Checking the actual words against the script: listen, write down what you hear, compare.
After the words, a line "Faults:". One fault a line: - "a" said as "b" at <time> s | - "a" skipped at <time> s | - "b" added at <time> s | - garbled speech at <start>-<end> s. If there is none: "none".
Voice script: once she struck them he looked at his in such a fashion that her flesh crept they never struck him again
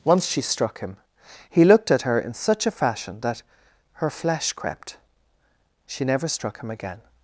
once she struck him he looked at her in such a fashion that her flesh crept she never struck him again
Faults:
- "them" said as "him" at 0.8 s
- "his" said as "her" at 2.0 s
- "they" said as "she" at 5.9 s